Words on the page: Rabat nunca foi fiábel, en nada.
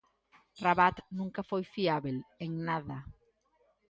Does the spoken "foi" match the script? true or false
true